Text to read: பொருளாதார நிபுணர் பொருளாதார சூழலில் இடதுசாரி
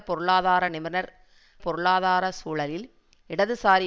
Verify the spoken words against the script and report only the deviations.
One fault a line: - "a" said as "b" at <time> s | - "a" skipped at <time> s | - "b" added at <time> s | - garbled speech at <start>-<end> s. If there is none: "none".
none